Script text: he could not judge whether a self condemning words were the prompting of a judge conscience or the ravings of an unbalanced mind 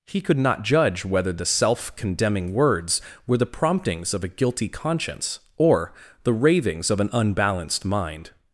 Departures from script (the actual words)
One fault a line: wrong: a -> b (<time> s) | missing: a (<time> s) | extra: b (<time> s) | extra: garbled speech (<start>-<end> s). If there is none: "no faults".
wrong: a -> the (1.3 s)
wrong: prompting -> promptings (3.4 s)
wrong: judge -> guilty (4.3 s)